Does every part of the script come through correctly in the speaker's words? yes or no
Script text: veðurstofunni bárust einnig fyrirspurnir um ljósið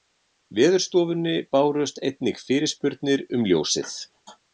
yes